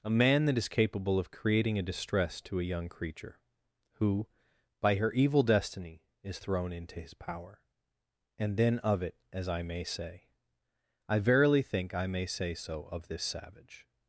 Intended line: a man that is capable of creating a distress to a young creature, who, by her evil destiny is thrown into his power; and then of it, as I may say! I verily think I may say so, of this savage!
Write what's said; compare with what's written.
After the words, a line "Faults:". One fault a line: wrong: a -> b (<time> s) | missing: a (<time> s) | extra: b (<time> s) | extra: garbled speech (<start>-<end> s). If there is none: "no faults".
a man that is capable of creating a distress to a young creature, who, by her evil destiny is thrown into his power; and then of it, as I may say! I verily think I may say so, of this savage!
Faults:
no faults